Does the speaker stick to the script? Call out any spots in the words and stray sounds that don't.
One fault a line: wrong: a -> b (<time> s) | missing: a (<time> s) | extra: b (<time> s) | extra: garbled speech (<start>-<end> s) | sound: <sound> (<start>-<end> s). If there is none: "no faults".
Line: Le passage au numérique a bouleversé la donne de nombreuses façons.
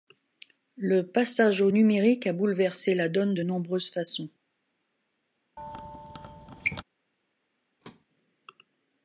sound: squeak (5.6-6.8 s)
sound: thud (7.8-8.1 s)